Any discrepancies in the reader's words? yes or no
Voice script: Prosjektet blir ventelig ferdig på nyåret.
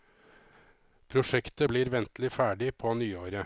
no